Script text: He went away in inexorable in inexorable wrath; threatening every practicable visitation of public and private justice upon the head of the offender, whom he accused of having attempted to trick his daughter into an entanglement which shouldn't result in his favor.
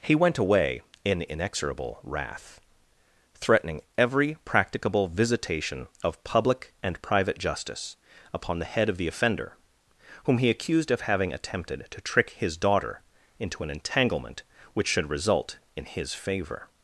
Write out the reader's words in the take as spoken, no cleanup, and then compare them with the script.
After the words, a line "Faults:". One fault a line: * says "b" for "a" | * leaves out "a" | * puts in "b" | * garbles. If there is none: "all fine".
He went away in inexorable wrath; threatening every practicable visitation of public and private justice upon the head of the offender, whom he accused of having attempted to trick his daughter into an entanglement which should result in his favor.
Faults:
* leaves out "in inexorable"
* says "should" for "shouldn't"